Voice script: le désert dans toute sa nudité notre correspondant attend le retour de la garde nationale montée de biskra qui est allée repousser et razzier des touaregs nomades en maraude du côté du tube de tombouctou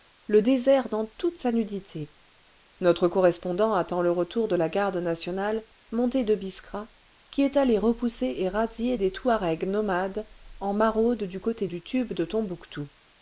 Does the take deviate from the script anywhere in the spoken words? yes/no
no